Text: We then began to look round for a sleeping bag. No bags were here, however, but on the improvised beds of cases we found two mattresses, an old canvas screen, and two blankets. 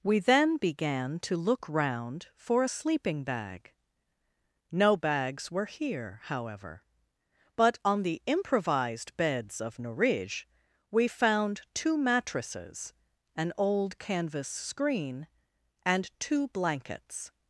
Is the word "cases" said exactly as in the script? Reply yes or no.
no